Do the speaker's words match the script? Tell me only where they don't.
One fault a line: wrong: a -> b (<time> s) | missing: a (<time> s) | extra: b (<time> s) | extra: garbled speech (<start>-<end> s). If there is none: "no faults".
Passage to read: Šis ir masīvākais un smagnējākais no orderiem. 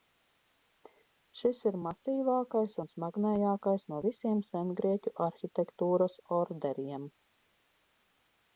extra: visiem sengrieķu arhitektūras (4.1 s)